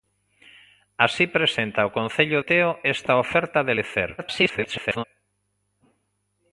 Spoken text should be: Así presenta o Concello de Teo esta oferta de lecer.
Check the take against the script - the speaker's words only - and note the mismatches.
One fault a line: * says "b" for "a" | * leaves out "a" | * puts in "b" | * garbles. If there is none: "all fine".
* leaves out "de"
* garbles